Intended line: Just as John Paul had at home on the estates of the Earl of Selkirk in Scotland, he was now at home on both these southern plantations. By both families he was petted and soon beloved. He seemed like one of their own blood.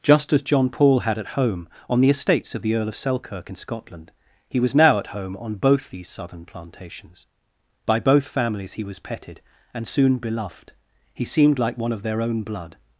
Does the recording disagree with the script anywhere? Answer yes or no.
no